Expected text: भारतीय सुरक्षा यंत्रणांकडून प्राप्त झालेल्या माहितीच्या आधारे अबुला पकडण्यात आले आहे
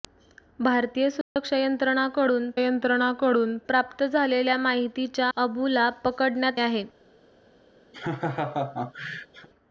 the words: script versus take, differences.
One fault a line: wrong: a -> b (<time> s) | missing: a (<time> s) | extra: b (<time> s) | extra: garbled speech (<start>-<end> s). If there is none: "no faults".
extra: यंत्रणांकडून (2.6 s)
missing: आधारे (5.3 s)
missing: आले (6.6 s)